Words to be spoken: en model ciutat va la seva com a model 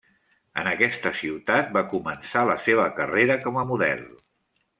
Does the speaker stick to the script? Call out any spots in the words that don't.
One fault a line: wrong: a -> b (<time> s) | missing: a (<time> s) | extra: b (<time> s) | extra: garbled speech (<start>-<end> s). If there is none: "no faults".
wrong: model -> aquesta (0.7 s)
extra: començar (1.9 s)
extra: carrera (3.0 s)